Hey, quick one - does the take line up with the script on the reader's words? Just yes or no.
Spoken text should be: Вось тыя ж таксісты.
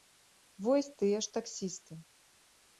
yes